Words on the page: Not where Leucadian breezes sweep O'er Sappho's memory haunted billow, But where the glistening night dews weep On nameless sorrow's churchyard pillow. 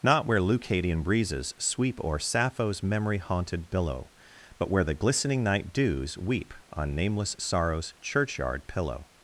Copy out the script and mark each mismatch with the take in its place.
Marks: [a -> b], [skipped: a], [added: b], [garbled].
Not where Leucadian breezes sweep O'er Sappho's memory haunted billow, But where the glistening night dews weep On nameless sorrow's churchyard pillow.